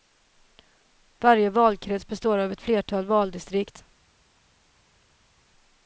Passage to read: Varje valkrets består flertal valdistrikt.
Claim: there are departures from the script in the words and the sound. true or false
true